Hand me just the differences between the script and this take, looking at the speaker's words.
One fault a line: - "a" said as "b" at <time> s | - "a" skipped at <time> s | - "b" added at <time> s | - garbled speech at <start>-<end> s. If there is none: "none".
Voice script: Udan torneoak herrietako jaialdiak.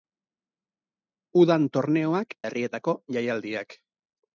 none